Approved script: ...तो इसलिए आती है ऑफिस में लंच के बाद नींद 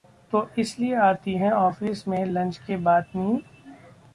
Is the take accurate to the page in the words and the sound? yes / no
yes